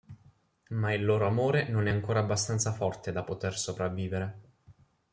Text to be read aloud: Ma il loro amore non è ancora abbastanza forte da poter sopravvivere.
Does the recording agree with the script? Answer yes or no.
yes